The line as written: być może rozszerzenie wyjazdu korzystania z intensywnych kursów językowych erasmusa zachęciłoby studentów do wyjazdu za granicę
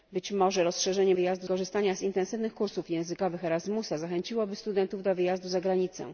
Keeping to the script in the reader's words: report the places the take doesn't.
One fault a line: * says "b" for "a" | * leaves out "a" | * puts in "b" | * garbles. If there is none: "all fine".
all fine